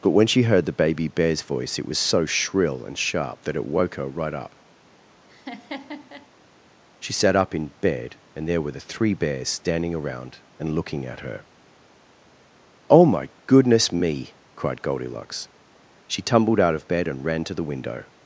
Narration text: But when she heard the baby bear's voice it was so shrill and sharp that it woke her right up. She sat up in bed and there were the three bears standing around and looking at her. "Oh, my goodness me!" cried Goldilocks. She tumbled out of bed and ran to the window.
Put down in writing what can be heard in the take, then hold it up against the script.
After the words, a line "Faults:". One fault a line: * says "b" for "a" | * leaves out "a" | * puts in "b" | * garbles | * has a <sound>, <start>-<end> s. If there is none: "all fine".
But when she heard the baby bear's voice it was so shrill and sharp that it woke her right up. She sat up in bed and there were the three bears standing around and looking at her. "Oh, my goodness me!" cried Goldilocks. She tumbled out of bed and ran to the window.
Faults:
* has a laugh, 5.3-6.3 s